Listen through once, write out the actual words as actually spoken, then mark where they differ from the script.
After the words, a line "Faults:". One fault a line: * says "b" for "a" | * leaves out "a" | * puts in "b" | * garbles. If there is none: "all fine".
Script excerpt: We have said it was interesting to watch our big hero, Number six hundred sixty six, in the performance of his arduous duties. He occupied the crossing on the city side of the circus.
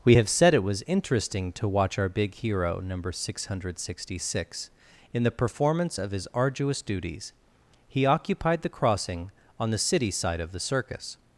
We have said it was interesting to watch our big hero, Number six hundred sixty six, in the performance of his arduous duties. He occupied the crossing on the city side of the circus.
Faults:
all fine